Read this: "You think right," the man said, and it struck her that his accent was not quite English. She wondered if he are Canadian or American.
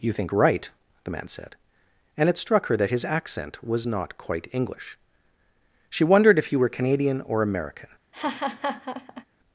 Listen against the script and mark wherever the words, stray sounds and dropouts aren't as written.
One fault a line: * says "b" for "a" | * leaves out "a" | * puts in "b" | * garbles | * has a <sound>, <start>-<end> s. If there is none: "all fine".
* says "were" for "are"
* has a laugh, 8.1-9.2 s